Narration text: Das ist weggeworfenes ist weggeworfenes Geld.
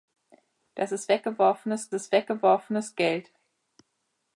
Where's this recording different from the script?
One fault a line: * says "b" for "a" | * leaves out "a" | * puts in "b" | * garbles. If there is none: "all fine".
all fine